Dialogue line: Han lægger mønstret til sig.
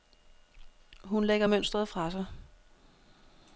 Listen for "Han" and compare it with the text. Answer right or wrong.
wrong